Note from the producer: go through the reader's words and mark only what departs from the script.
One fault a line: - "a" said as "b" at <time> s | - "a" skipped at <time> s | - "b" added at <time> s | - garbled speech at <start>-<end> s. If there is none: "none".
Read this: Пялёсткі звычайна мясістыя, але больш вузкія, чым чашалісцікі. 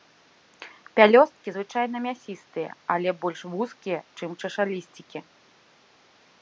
none